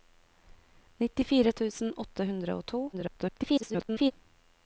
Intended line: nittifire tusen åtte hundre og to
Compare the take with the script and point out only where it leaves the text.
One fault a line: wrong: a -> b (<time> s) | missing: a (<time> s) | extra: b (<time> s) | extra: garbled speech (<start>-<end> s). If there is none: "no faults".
extra: garbled speech (2.9-4.1 s)